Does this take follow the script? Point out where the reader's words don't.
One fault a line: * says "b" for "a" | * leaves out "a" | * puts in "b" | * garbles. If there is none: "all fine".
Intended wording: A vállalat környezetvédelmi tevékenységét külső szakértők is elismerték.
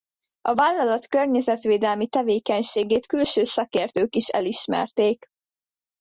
all fine